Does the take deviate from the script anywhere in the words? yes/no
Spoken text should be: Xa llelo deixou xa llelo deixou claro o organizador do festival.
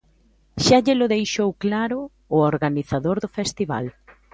yes